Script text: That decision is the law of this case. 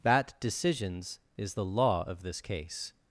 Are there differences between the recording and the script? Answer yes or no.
yes